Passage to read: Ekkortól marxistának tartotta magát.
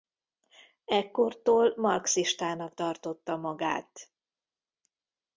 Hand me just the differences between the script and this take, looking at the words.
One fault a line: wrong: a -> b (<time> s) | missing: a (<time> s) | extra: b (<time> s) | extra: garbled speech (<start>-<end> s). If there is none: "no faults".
no faults